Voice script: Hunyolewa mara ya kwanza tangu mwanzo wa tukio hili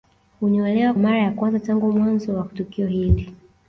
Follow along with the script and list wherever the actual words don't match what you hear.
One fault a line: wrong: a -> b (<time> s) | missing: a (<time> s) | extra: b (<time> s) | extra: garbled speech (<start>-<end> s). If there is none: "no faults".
no faults